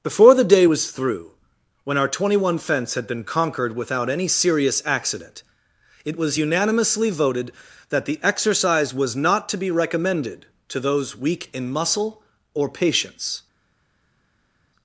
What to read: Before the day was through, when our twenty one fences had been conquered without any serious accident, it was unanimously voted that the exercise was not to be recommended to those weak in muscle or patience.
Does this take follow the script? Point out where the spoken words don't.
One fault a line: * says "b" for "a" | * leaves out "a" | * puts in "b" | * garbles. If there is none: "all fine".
* says "fence" for "fences"